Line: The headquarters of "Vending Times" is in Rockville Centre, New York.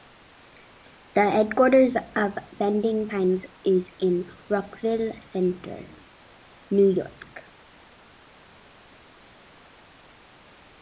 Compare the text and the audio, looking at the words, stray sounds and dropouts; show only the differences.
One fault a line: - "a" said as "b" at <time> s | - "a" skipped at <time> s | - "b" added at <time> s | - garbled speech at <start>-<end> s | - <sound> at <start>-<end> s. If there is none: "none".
none